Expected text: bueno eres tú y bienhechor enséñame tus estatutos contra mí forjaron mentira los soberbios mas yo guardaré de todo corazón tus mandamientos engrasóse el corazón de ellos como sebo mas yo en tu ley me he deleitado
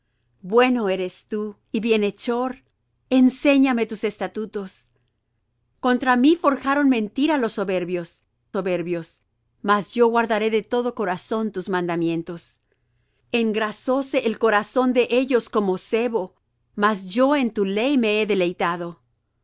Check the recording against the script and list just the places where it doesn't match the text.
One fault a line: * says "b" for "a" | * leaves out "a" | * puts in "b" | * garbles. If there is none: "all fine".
* puts in "soberbios"